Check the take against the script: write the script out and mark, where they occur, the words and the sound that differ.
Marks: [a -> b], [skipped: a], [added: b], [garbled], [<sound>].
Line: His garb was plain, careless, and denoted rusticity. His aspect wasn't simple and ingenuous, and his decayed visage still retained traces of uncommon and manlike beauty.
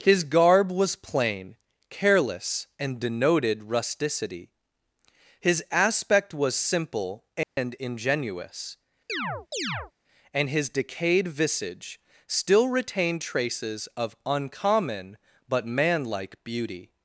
His garb was plain, careless, and denoted rusticity. His aspect [wasn't -> was] simple and [dropout] ingenuous, [chirp] and his decayed visage still retained traces of uncommon [and -> but] manlike beauty.